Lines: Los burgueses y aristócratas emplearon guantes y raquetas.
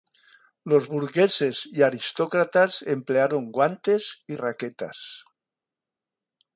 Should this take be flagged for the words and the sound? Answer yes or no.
no